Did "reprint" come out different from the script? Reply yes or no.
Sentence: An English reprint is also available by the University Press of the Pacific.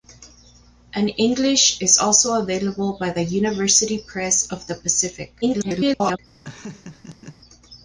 yes